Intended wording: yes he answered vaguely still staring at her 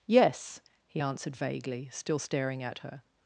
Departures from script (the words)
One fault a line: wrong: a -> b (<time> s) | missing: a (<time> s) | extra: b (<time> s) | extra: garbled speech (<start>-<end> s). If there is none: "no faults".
no faults